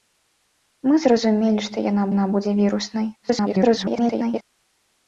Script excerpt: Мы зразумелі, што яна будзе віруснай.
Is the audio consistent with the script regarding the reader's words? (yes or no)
no